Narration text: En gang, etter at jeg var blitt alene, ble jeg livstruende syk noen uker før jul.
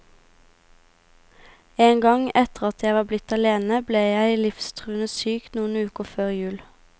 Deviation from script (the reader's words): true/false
false